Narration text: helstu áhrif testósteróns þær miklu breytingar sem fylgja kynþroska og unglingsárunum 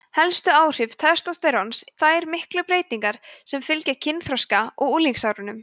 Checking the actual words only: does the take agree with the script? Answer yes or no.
yes